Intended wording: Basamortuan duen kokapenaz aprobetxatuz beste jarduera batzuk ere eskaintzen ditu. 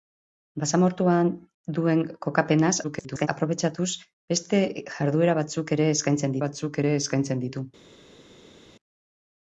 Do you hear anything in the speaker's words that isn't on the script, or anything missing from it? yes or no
yes